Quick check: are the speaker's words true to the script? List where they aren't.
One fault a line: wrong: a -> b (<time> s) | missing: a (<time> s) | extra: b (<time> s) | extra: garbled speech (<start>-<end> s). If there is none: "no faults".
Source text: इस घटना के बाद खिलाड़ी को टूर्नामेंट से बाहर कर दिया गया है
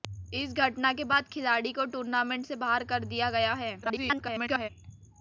extra: garbled speech (3.8-4.7 s)